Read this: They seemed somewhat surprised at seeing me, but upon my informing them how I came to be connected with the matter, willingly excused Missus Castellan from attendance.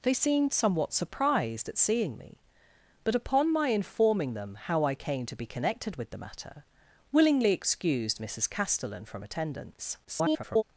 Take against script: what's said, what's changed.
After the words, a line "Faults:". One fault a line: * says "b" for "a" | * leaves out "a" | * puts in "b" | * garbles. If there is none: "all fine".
They seemed somewhat surprised at seeing me, but upon my informing them how I came to be connected with the matter, willingly excused Missus Castellan from attendance. [garbled]
Faults:
* garbles